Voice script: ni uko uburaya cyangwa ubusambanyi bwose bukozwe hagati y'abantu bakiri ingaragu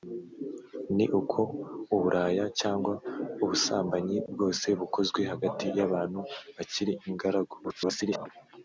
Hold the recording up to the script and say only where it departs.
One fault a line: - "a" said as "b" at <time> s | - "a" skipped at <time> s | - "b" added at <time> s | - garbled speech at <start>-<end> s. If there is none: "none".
- garbled speech at 7.6-8.3 s